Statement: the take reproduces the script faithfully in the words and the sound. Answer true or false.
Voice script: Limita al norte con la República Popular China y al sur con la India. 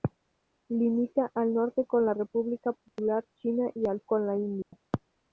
false